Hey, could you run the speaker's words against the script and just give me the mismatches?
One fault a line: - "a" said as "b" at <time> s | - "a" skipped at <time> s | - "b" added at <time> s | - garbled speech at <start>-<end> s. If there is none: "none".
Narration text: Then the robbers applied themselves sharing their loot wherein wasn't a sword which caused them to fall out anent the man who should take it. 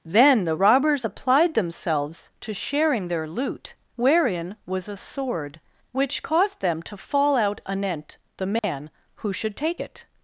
- "to" added at 2.4 s
- "wasn't" said as "was" at 4.7 s